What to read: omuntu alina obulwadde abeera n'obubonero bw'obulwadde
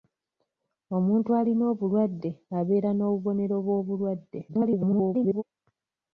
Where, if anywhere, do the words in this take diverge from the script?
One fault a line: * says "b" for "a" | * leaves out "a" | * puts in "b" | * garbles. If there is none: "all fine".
* garbles